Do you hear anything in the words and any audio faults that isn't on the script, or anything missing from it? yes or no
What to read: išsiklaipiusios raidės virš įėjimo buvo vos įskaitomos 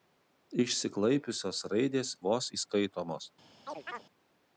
yes